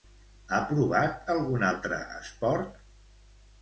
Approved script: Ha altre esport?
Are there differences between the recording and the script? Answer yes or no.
yes